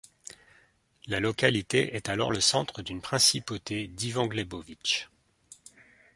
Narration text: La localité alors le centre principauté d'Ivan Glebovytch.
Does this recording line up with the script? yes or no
no